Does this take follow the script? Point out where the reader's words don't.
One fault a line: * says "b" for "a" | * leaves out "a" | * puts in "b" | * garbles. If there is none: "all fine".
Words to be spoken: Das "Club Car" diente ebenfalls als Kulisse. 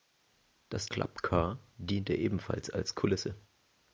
all fine